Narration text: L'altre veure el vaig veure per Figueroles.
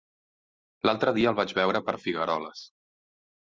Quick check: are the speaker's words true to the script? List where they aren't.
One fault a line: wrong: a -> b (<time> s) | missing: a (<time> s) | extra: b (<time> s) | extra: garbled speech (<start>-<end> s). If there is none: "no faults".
wrong: veure -> dia (1.2 s)